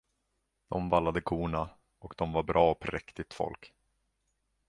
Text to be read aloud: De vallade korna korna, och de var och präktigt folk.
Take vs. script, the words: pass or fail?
fail